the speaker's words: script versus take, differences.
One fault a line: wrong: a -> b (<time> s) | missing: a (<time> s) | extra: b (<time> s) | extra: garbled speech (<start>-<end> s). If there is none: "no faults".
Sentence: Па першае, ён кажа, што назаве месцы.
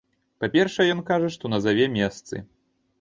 no faults